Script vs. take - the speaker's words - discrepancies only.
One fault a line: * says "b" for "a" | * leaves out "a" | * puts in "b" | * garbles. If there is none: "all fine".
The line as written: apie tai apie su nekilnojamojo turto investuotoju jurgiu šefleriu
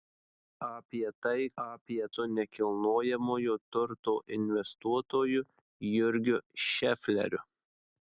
all fine